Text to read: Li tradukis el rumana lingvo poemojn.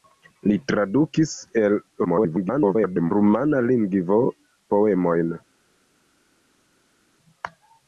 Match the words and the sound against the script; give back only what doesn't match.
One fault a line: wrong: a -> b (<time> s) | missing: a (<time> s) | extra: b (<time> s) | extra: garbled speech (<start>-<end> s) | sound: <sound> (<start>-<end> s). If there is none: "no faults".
extra: garbled speech (2.0-3.1 s)